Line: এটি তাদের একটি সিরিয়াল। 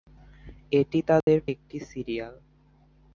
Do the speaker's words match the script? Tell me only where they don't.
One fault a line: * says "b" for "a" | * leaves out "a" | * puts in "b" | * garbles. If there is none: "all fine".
all fine